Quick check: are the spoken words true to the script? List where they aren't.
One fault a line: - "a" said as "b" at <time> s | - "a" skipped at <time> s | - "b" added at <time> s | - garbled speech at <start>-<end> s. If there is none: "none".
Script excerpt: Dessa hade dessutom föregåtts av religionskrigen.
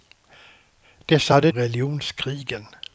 - "dessutom föregåtts av" skipped at 1.5 s